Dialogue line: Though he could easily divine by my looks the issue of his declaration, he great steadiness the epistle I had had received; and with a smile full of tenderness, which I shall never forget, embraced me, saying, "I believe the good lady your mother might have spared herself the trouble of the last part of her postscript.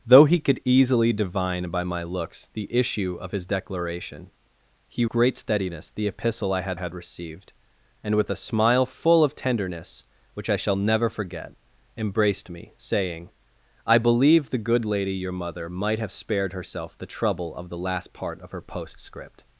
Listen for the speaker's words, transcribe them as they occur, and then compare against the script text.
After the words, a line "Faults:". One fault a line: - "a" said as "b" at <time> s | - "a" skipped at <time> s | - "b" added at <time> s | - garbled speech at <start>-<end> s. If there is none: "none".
Though he could easily divine by my looks the issue of his declaration, he great steadiness the epistle I had had received; and with a smile full of tenderness, which I shall never forget, embraced me, saying, "I believe the good lady your mother might have spared herself the trouble of the last part of her postscript.
Faults:
none